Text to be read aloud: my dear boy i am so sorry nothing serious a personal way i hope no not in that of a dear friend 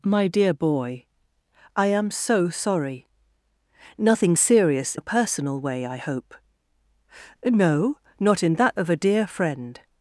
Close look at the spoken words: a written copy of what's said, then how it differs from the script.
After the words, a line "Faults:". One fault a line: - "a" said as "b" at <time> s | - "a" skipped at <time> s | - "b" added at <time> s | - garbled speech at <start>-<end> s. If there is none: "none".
my dear boy i am so sorry nothing serious a personal way i hope no not in that of a dear friend
Faults:
none